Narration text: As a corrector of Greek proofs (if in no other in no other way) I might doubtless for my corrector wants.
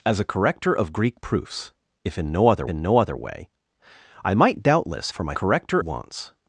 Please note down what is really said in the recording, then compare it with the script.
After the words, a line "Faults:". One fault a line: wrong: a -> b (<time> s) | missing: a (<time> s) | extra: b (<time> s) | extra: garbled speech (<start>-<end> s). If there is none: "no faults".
As a corrector of Greek proofs (if in no other in no other way) I might doubtless for my corrector wants.
Faults:
no faults